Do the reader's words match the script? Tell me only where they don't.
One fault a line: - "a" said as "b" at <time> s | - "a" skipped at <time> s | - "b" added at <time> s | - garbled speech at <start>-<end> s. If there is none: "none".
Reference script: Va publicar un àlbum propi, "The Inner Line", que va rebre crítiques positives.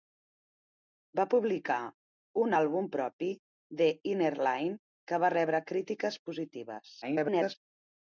- garbled speech at 7.0-7.6 s